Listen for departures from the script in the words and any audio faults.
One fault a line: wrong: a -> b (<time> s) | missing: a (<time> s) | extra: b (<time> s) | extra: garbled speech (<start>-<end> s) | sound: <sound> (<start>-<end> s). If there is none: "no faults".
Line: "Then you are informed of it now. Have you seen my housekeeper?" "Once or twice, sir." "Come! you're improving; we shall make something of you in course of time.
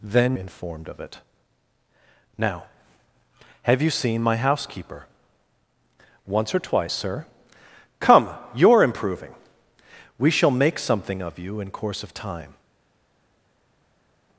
missing: you are (0.3 s)